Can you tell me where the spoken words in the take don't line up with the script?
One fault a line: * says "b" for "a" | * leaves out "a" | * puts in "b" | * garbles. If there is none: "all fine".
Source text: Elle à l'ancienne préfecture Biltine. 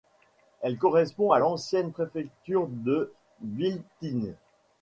* puts in "correspond"
* puts in "de"